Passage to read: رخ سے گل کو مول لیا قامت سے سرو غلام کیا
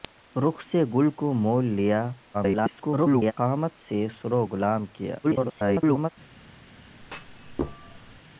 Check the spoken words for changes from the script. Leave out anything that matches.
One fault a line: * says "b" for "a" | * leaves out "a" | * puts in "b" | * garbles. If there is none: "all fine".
* garbles
* garbles